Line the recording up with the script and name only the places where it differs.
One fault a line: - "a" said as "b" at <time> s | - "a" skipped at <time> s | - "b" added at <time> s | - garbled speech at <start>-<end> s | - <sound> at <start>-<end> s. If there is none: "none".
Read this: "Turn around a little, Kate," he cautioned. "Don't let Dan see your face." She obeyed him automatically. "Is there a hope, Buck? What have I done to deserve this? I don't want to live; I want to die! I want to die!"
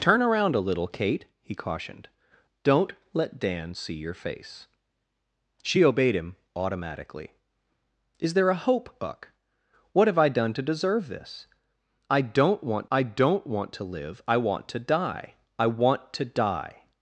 - "I don't want" added at 12.9 s